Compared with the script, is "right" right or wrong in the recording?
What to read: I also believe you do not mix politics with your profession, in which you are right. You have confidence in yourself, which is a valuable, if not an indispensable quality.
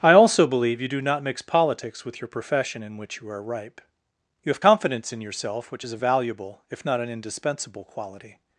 wrong